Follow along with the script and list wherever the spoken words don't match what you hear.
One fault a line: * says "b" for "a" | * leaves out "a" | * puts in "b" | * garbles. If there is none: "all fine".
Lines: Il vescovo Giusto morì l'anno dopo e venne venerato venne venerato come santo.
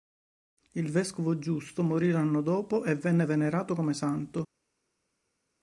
* leaves out "venne venerato"